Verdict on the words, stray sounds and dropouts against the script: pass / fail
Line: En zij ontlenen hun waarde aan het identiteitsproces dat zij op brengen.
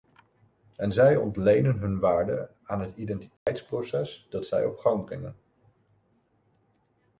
fail